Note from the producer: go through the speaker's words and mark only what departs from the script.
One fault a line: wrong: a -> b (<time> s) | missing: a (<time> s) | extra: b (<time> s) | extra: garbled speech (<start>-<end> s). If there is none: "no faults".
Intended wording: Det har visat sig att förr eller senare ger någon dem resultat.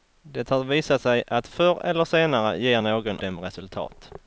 no faults